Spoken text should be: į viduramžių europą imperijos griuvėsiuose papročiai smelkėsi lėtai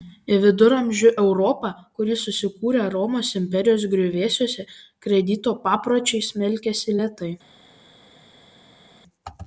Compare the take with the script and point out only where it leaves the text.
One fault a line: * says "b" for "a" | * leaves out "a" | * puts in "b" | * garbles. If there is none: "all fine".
* puts in "kuri susikūrė romos"
* puts in "kredito"